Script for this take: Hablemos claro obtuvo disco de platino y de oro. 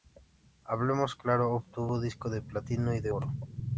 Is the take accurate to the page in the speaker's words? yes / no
yes